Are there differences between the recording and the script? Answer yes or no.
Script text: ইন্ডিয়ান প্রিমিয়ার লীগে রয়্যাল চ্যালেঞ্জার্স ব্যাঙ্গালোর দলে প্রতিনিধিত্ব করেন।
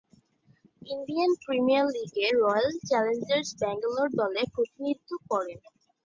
no